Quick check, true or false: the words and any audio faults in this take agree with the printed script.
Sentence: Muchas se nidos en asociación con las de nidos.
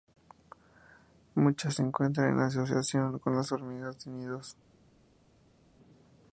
false